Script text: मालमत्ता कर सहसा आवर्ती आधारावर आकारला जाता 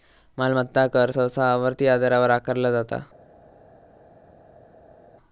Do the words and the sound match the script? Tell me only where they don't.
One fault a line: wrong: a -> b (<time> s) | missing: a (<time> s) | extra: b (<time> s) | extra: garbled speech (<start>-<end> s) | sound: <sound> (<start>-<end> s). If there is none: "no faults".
no faults